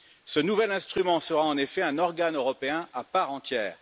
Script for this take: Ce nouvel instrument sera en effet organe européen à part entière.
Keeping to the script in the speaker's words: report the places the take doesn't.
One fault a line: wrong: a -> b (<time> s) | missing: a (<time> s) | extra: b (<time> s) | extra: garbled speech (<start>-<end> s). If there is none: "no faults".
extra: un (1.8 s)